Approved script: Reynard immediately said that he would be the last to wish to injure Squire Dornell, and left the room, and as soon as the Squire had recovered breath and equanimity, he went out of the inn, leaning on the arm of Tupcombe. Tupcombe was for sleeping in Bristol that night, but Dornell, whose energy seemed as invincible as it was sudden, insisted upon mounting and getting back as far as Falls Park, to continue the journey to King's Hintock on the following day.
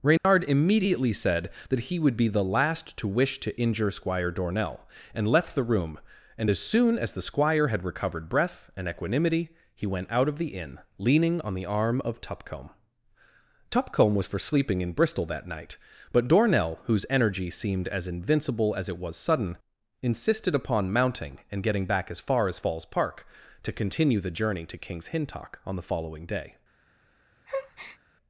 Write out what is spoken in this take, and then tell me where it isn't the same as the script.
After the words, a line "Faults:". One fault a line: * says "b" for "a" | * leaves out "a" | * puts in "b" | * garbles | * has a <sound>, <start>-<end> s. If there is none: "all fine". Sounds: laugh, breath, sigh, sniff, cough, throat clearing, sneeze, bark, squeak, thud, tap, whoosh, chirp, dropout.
Reynard immediately said that he would be the last to wish to injure Squire Dornell, and left the room, and as soon as the Squire had recovered breath and equanimity, he went out of the inn, leaning on the arm of Tupcombe. Tupcombe was for sleeping in Bristol that night, but Dornell, whose energy seemed as invincible as it was sudden, insisted upon mounting and getting back as far as Falls Park, to continue the journey to King's Hintock on the following day.
Faults:
* has a dropout, 0.2-0.2 s
* has a breath, 27.5-28.0 s